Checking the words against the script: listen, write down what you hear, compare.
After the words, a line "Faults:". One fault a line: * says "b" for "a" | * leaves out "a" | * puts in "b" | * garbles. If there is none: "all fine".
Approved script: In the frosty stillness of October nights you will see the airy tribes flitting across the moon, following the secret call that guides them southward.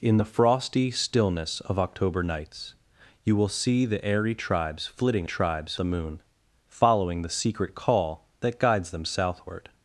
In the frosty stillness of October nights you will see the airy tribes flitting tribes the moon, following the secret call that guides them southward.
Faults:
* says "tribes" for "across"